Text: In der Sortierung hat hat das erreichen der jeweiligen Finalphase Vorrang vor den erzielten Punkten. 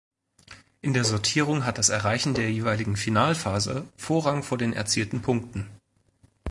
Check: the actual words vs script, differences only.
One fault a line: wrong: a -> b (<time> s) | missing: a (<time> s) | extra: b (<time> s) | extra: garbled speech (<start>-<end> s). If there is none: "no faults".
missing: hat (1.8 s)